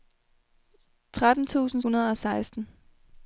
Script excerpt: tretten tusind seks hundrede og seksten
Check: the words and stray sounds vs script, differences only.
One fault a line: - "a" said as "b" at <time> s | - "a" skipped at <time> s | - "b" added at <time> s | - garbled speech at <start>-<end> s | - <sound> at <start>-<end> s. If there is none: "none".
- "seks" skipped at 1.8 s